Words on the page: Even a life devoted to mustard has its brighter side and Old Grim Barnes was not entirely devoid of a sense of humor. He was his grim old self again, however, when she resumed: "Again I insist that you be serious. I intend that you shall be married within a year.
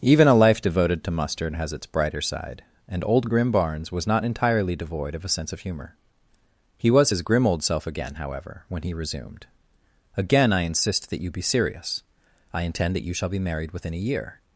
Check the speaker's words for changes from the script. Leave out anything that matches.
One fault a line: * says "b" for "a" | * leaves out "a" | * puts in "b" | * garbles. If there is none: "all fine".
* says "he" for "she"